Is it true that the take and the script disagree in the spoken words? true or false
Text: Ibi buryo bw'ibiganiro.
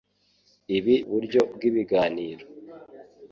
false